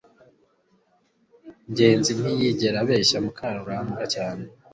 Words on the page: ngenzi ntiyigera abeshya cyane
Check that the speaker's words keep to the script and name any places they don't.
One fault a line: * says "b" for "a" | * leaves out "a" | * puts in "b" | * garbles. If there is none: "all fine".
* puts in "mukarugambwa"